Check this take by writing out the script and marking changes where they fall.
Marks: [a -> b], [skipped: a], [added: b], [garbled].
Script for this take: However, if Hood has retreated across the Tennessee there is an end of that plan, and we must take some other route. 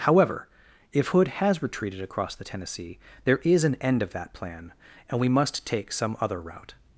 However, if Hood has retreated across the Tennessee there is an end of that plan, and we must take some other route.